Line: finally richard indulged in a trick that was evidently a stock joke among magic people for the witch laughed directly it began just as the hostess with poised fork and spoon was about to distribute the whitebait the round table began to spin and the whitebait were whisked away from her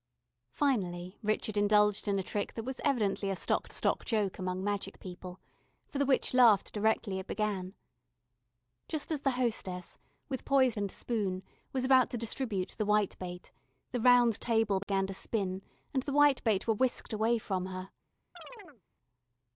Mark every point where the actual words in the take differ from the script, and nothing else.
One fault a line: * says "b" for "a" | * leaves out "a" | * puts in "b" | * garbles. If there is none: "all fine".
* puts in "stock"
* leaves out "fork"